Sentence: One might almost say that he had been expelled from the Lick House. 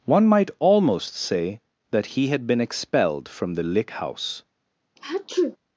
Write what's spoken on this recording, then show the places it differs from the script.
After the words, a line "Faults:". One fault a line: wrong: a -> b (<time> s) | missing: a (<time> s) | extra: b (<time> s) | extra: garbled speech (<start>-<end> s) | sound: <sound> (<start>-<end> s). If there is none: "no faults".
One might almost say that he had been expelled from the Lick House.
Faults:
sound: sneeze (5.0-5.6 s)